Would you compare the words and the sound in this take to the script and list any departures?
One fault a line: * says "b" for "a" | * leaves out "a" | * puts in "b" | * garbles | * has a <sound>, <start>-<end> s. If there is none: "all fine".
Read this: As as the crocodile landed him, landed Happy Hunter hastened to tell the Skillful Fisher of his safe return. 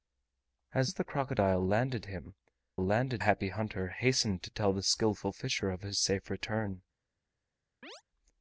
* has a chirp, 7.8-8.0 s